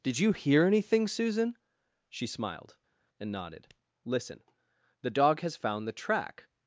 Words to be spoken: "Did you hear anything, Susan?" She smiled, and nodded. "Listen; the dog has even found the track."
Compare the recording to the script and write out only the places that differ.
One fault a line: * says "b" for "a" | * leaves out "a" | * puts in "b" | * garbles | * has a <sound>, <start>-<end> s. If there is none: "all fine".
* leaves out "even"